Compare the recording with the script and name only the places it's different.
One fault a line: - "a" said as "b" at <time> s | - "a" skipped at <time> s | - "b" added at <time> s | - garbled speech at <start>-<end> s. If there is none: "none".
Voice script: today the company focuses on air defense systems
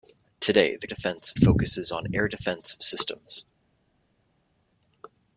- "company" said as "defense" at 0.9 s